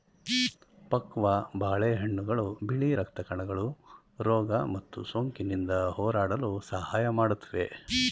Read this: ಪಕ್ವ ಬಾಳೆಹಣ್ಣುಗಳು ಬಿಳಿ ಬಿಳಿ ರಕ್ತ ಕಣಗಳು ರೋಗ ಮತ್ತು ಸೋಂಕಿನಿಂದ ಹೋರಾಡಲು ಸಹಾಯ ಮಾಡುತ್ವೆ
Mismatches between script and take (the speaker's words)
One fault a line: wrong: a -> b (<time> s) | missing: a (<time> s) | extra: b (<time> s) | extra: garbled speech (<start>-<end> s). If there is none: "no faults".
missing: ಬಿಳಿ (2.9 s)